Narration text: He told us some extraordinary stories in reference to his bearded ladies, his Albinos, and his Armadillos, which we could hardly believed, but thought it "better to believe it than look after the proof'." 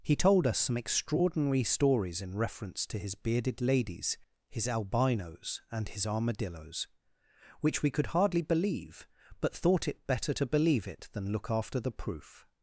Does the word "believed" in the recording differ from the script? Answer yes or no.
yes